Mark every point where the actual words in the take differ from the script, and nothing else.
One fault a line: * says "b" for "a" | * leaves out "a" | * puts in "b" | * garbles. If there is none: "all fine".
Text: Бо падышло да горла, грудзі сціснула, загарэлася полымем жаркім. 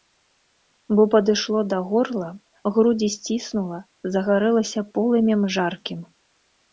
all fine